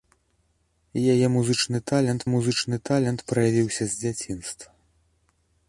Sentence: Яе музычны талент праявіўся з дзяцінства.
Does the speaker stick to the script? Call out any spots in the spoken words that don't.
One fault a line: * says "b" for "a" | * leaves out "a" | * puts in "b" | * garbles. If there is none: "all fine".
* puts in "музычны талент"